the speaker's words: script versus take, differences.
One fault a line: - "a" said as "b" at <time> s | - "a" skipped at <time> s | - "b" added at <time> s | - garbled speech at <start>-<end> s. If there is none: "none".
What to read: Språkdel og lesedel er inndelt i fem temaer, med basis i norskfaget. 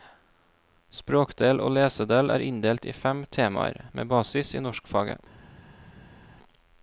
none